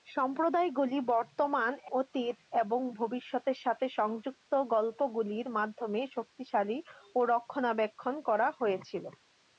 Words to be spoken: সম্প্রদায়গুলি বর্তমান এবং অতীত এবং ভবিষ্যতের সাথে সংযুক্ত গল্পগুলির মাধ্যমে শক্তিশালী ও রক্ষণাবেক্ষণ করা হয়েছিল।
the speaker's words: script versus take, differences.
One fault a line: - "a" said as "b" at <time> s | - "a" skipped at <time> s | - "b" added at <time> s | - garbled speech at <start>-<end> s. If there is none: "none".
- "এবং" skipped at 1.7 s